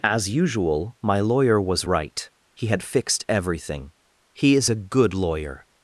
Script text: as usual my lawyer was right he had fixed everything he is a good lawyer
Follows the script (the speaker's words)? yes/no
yes